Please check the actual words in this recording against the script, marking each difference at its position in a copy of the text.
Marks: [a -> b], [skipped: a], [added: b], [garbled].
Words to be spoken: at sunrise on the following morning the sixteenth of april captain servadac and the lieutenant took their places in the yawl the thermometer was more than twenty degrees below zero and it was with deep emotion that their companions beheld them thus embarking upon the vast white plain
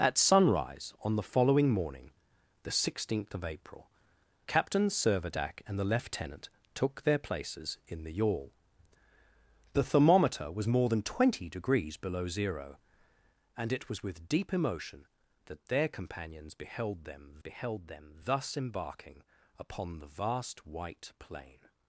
at sunrise on the following morning the sixteenth of april captain servadac and the lieutenant took their places in the yawl the thermometer was more than twenty degrees below zero and it was with deep emotion that their companions beheld them [added: beheld them] thus embarking upon the vast white plain